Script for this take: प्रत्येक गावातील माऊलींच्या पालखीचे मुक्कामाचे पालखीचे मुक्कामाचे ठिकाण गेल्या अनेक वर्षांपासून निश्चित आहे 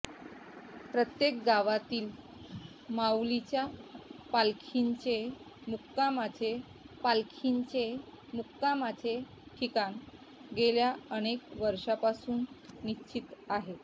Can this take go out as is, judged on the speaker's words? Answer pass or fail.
pass